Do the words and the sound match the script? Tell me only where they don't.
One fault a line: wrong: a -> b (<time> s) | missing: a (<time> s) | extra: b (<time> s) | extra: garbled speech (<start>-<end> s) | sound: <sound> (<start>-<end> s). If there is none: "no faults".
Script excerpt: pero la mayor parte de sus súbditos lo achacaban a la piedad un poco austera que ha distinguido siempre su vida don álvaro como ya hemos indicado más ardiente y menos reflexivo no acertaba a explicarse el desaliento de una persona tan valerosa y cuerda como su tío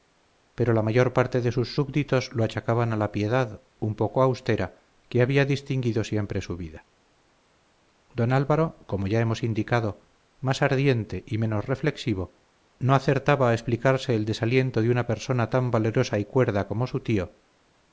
wrong: ha -> había (5.2 s)